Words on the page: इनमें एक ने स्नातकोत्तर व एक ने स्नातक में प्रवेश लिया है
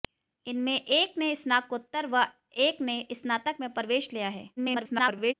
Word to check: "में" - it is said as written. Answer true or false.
true